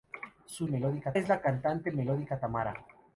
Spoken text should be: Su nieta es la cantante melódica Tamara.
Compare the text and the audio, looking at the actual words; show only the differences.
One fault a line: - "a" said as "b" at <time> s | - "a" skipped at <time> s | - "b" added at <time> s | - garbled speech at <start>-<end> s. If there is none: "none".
- "nieta" said as "melódica" at 0.7 s